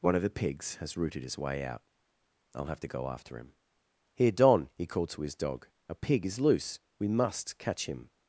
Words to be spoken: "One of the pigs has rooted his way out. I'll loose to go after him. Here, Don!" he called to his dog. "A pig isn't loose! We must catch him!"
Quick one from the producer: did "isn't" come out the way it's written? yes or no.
no